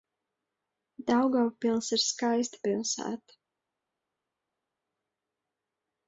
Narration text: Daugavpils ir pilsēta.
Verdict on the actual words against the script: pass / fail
fail